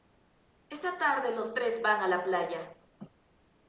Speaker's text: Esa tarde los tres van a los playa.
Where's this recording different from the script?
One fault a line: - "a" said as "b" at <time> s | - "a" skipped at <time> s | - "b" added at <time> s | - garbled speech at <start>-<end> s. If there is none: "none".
- "los" said as "la" at 2.1 s